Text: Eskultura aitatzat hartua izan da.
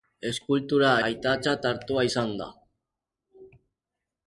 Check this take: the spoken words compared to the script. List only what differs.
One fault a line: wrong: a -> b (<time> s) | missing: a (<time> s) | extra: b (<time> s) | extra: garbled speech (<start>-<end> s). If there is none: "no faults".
no faults